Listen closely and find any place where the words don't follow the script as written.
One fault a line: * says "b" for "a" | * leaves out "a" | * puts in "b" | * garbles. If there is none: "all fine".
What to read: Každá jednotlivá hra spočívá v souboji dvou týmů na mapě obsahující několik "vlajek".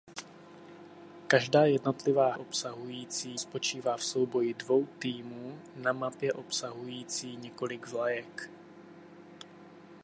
* says "obsahující" for "hra"